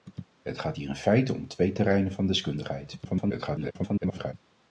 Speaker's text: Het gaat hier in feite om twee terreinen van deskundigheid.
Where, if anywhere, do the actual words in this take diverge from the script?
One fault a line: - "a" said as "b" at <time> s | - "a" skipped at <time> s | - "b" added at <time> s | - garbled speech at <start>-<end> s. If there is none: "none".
- garbled speech at 3.0-4.3 s